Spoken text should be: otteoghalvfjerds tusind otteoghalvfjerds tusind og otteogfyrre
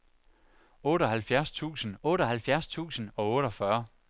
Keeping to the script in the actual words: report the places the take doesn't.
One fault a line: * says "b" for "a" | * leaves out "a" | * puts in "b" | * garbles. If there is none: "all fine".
all fine